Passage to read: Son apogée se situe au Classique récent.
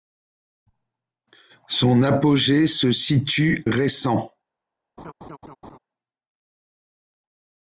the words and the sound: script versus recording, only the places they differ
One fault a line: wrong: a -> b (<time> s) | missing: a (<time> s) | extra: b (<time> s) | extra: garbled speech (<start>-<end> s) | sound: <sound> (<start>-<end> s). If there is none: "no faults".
missing: au Classique (3.6 s)
sound: laugh (5.0-5.8 s)